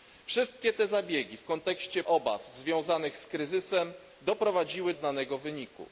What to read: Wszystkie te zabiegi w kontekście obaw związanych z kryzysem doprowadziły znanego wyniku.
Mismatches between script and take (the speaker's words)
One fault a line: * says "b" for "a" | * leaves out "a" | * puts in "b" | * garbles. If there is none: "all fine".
all fine